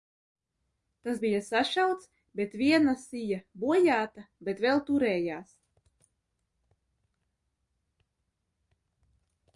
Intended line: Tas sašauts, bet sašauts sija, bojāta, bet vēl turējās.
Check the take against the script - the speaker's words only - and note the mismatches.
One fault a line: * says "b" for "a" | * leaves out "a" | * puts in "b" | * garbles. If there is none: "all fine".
* puts in "bija"
* says "viena" for "sašauts"